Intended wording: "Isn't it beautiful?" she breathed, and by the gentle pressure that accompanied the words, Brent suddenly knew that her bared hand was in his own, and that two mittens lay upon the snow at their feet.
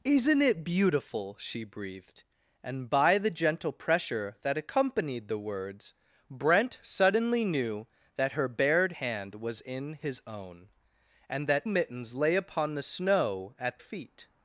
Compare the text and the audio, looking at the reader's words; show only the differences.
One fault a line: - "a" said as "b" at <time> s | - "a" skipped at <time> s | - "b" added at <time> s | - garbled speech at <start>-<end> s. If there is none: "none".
- "two" skipped at 11.7 s
- "their" skipped at 13.8 s